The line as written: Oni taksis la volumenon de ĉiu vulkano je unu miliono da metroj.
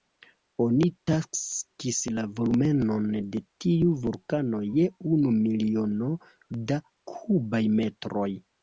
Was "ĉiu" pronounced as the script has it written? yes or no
no